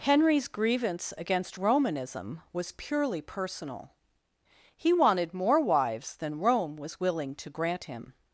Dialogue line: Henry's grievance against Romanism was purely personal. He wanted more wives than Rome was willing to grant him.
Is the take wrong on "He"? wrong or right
right